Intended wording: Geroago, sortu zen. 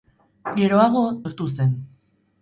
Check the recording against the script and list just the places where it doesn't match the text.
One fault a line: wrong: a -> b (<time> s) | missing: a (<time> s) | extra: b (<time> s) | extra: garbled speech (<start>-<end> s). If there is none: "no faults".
no faults